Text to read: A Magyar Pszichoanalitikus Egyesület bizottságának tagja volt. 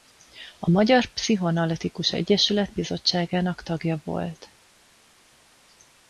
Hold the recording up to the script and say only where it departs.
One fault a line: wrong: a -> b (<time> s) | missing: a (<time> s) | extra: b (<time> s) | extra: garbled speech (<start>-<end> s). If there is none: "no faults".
no faults